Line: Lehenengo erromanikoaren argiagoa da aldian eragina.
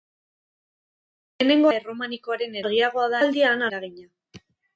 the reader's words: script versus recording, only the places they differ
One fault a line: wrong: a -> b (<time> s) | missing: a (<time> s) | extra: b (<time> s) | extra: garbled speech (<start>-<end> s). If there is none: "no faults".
no faults